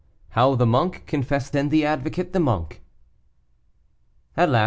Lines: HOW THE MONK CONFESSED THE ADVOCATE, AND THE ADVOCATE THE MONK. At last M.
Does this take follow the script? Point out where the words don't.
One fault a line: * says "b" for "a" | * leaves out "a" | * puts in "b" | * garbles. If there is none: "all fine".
* leaves out "THE ADVOCATE"